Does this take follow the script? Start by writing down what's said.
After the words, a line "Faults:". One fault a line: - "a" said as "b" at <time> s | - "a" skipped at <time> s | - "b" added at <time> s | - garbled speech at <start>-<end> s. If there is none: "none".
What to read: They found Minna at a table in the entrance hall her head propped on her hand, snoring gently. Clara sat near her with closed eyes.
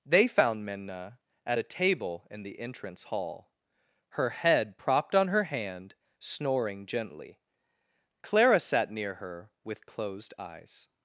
They found Minna at a table in the entrance hall her head propped on her hand, snoring gently. Clara sat near her with closed eyes.
Faults:
none